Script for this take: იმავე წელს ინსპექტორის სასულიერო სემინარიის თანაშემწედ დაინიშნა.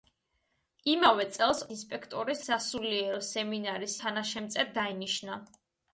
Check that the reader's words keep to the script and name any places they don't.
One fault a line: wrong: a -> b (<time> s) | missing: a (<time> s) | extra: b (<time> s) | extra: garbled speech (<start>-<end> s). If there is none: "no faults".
no faults